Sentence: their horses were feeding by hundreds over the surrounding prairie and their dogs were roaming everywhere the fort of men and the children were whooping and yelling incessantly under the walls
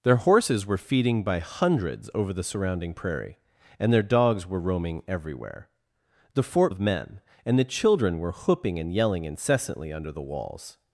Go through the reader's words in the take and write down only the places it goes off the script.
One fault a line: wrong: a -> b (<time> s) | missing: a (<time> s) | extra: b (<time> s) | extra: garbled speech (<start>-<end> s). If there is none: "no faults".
no faults